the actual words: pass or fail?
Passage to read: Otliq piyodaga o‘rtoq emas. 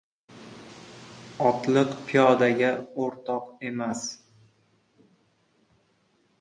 pass